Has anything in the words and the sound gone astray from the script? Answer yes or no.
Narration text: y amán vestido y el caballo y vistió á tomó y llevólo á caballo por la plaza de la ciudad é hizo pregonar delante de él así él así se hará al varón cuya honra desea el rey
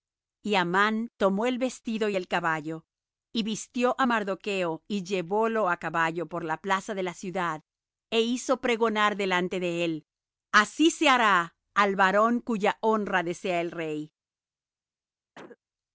yes